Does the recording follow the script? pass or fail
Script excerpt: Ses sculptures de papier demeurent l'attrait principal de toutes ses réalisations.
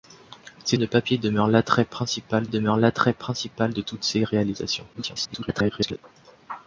fail